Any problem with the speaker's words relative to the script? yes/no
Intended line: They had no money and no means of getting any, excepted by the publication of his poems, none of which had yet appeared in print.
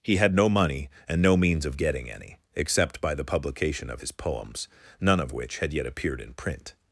yes